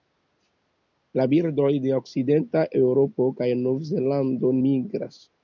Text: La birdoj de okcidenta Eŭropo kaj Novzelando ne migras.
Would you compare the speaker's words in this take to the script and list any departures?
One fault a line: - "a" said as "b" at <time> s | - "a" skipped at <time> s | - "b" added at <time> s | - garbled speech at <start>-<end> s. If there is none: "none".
- "ne" skipped at 4.5 s